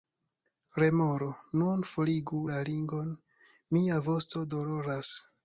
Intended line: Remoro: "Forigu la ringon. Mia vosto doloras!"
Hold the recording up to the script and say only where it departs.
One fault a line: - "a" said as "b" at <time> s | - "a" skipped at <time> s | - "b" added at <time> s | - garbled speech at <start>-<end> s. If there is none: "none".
- "Nun" added at 1.6 s